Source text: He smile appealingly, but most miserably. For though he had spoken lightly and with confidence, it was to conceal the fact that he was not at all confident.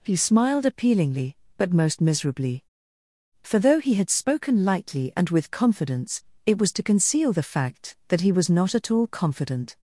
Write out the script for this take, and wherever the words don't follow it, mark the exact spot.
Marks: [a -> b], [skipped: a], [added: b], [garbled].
He [smile -> smiled] appealingly, but most miserably. For though he had spoken lightly and with confidence, it was to conceal the fact that he was not at all confident.